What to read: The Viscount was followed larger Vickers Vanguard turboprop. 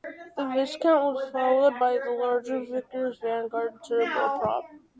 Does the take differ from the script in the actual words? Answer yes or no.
yes